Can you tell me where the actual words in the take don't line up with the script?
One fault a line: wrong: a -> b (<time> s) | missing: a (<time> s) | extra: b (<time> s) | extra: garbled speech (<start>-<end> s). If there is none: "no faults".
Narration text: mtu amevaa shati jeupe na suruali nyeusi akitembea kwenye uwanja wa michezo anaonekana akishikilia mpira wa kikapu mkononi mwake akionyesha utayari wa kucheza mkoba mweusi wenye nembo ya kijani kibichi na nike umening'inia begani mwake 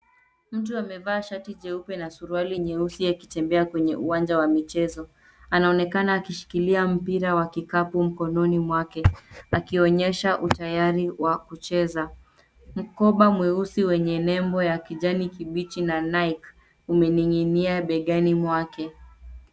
no faults